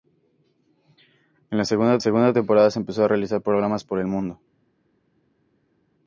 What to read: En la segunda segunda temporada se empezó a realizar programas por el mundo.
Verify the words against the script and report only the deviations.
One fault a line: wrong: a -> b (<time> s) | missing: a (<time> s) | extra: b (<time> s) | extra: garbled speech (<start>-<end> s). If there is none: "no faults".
no faults